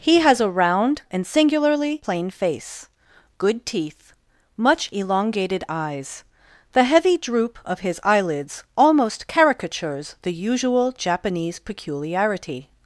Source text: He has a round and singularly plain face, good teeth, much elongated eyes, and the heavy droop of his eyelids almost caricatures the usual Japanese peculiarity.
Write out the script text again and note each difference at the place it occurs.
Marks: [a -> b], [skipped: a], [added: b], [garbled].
He has a round and singularly plain face, good teeth, much elongated eyes, [skipped: and] the heavy droop of his eyelids almost caricatures the usual Japanese peculiarity.